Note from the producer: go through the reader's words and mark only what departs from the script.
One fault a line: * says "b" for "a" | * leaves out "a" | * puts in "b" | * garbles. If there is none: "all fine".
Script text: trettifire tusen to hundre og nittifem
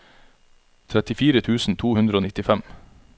all fine